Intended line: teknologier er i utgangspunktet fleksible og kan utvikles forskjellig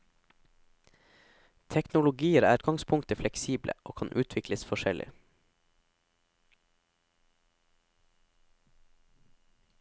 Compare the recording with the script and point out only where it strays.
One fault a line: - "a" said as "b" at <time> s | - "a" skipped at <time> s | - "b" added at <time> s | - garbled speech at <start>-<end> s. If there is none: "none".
- "i" skipped at 2.6 s